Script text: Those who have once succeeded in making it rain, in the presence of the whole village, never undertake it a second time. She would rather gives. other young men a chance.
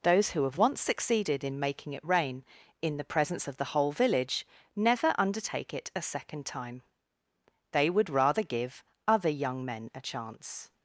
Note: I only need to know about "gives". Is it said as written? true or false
false